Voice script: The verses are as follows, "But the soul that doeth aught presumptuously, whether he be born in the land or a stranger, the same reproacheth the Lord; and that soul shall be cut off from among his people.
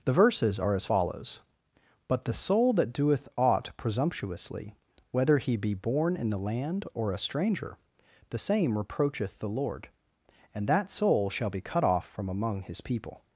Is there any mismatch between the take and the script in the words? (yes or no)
no